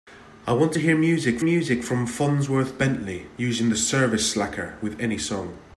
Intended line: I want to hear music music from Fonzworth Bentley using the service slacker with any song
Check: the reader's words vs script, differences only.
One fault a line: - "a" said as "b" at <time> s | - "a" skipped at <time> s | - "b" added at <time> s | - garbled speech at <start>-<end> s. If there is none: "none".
none